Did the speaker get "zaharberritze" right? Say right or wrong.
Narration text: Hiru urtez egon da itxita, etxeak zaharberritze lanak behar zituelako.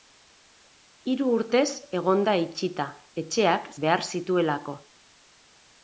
wrong